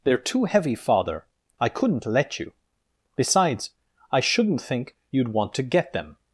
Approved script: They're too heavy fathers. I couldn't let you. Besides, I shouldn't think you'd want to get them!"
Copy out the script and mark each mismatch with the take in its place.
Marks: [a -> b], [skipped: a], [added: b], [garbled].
They're too heavy [fathers. -> father] I couldn't let you. Besides, I shouldn't think you'd want to get them!"